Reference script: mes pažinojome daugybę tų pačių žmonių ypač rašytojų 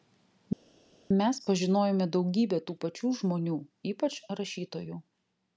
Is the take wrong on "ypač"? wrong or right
right